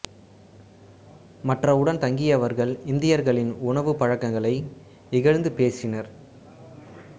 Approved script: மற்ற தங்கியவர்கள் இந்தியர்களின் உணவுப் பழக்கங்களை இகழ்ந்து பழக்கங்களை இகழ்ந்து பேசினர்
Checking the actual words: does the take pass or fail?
fail